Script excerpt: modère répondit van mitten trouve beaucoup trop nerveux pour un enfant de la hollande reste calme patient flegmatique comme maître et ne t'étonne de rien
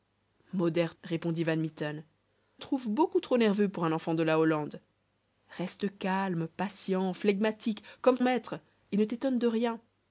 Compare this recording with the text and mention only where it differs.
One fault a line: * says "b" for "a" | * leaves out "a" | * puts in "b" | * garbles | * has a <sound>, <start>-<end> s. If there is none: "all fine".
all fine